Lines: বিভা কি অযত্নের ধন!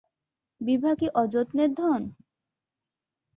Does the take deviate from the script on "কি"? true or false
false